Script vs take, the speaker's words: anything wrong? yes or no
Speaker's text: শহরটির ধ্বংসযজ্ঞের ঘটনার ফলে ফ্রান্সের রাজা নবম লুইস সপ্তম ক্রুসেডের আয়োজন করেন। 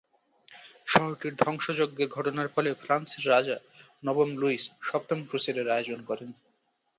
no